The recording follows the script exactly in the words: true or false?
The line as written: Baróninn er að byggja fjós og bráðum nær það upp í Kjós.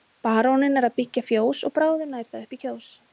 true